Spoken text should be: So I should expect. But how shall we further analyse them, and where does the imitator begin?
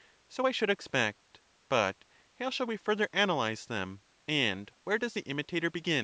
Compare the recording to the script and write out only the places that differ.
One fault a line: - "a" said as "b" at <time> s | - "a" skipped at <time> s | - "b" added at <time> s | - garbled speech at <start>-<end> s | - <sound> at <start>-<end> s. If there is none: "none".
none